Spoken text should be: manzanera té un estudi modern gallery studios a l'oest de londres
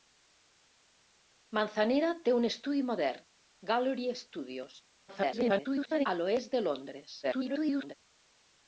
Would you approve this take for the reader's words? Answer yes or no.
no